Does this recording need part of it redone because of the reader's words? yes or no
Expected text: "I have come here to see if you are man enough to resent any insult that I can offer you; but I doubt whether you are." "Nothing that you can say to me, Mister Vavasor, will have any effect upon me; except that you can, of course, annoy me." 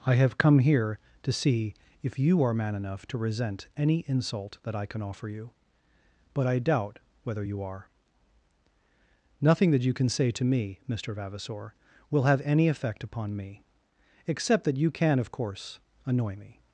no